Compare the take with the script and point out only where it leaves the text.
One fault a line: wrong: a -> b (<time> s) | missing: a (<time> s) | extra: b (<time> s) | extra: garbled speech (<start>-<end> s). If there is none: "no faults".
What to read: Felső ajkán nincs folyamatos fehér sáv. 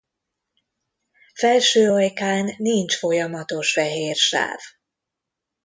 no faults